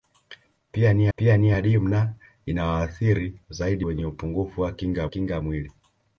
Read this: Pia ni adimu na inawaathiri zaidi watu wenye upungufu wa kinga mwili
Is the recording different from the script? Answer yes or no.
yes